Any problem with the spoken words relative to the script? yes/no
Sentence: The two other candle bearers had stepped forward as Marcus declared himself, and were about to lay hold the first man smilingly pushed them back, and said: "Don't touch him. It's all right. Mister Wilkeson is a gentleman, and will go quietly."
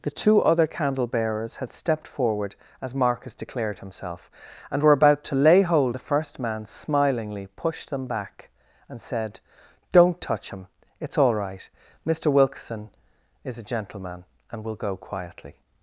no